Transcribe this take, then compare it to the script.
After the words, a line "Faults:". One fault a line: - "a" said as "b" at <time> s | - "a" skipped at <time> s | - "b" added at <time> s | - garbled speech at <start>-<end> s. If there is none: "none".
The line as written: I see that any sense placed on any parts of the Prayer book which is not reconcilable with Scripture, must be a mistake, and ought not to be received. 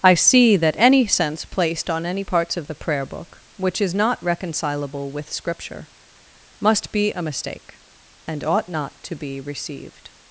I see that any sense placed on any parts of the Prayer book which is not reconcilable with Scripture, must be a mistake, and ought not to be received.
Faults:
none